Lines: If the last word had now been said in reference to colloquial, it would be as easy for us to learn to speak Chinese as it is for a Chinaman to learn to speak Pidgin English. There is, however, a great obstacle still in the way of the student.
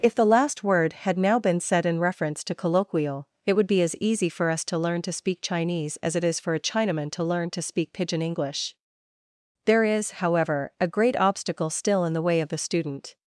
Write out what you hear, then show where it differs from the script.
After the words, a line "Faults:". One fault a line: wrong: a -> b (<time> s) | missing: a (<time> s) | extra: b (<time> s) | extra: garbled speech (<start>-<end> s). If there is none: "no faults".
If the last word had now been said in reference to colloquial, it would be as easy for us to learn to speak Chinese as it is for a Chinaman to learn to speak Pidgin English. There is, however, a great obstacle still in the way of the student.
Faults:
no faults